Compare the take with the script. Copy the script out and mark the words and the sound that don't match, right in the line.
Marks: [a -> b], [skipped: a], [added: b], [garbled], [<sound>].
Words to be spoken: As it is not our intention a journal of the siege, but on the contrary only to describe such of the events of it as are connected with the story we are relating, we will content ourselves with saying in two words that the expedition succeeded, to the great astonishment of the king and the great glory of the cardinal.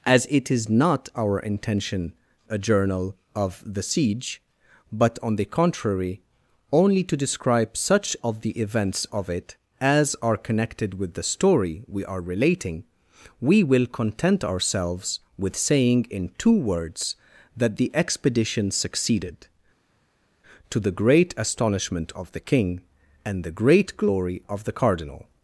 As it is not our intention a journal of the siege, but on the contrary only to describe such of the events of it as are connected with the story we are relating, we will content ourselves with saying in two words that the expedition succeeded, to the great astonishment of the king and the great glory of the cardinal.